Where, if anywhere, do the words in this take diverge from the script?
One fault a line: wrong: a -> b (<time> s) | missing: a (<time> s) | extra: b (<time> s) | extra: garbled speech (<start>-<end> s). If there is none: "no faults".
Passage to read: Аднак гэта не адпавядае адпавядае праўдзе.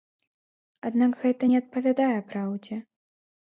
missing: адпавядае (2.1 s)